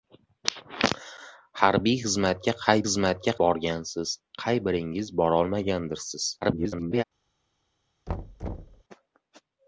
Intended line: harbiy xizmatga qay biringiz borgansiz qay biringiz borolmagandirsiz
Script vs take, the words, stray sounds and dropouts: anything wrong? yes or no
yes